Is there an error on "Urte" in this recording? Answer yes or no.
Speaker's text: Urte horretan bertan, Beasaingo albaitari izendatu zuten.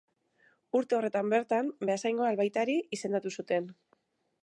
no